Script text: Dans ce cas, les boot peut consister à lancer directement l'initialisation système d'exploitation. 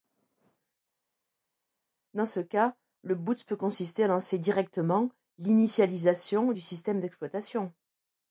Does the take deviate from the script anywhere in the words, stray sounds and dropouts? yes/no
yes